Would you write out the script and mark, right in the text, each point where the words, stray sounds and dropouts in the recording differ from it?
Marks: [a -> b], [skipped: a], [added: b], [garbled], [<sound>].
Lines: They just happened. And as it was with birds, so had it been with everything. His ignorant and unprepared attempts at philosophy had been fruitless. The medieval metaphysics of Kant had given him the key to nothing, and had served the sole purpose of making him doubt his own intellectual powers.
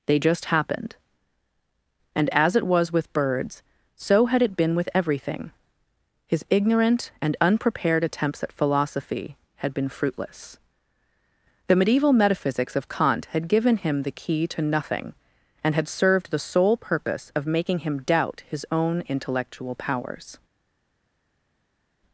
They just happened. And as it was with birds, so had it been with everything. His ignorant and unprepared attempts at philosophy had been fruitless. The medieval metaphysics of Kant had given him the key to nothing, and had served the sole purpose of making him doubt his own intellectual powers.